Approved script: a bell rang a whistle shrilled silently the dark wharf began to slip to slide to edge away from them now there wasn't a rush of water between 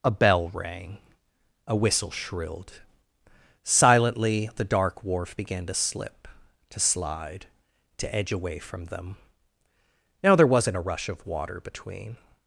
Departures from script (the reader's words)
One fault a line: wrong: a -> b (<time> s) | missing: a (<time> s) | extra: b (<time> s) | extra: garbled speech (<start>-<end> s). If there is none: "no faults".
no faults